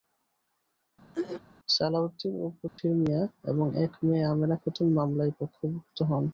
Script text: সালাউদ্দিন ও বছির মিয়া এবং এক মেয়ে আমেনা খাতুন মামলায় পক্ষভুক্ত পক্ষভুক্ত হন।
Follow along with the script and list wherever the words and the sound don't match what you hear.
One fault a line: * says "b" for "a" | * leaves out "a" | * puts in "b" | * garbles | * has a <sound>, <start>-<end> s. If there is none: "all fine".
* has a throat clearing, 1.1-1.4 s
* has a dropout, 2.7-2.8 s
* leaves out "পক্ষভুক্ত"